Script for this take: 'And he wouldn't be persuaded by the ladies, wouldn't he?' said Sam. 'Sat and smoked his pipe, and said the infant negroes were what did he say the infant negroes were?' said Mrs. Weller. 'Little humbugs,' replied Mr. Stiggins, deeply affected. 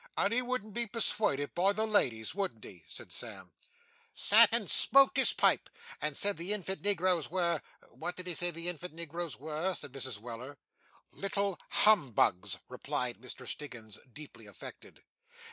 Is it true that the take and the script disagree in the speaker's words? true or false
false